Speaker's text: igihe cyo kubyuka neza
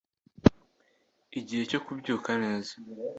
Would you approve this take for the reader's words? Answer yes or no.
yes